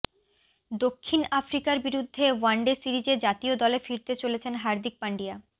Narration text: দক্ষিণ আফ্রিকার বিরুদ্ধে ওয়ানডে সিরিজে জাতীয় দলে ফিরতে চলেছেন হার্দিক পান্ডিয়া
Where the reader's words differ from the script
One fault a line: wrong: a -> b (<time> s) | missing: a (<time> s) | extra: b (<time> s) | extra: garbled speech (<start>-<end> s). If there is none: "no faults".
no faults